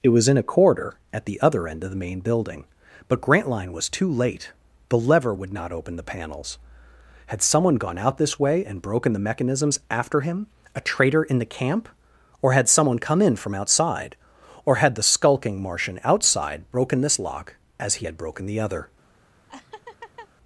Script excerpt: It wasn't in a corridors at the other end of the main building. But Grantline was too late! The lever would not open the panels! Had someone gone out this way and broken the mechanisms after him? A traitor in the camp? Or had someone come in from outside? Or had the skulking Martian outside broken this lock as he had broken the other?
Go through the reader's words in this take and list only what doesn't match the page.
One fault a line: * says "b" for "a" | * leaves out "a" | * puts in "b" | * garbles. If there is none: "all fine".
* says "was" for "wasn't"
* says "corridor" for "corridors"